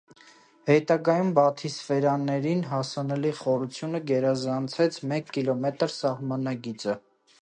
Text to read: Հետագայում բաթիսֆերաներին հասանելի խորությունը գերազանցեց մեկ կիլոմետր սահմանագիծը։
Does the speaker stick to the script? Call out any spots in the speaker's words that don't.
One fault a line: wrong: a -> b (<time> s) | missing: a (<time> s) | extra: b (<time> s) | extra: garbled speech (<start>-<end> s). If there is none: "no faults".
no faults